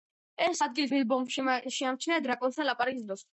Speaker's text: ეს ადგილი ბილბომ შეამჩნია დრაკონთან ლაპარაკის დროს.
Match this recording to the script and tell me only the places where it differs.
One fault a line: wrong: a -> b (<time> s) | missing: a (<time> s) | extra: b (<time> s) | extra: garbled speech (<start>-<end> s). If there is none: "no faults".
no faults